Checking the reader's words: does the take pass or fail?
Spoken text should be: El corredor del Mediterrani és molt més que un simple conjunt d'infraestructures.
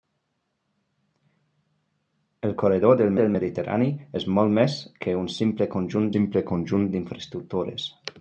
fail